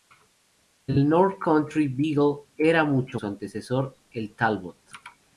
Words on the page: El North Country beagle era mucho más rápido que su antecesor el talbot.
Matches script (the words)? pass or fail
fail